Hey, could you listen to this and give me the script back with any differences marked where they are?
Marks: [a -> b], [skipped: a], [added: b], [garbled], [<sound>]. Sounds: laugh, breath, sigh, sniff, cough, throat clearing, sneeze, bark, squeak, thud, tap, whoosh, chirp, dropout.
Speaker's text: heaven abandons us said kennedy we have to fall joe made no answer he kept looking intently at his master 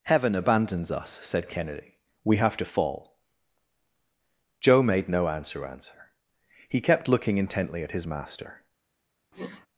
heaven abandons us said kennedy we have to fall joe made no answer [added: answer] he kept looking intently at his master [sniff]